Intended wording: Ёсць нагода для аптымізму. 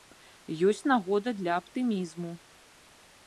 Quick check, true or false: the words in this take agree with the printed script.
true